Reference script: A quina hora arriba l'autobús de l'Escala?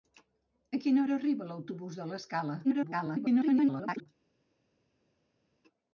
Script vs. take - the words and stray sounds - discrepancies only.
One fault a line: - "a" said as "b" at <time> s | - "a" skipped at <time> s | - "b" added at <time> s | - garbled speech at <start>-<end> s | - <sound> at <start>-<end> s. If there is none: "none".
- garbled speech at 2.6-4.1 s